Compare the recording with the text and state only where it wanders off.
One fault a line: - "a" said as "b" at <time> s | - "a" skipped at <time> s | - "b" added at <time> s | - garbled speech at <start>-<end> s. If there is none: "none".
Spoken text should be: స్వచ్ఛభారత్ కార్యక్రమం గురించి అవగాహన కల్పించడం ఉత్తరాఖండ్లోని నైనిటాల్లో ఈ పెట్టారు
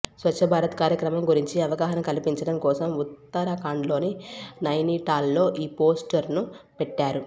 - "కోసం" added at 2.6 s
- "పోస్టర్ను" added at 5.8 s